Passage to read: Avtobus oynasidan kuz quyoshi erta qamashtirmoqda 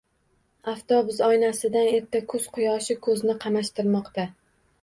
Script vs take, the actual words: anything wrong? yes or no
yes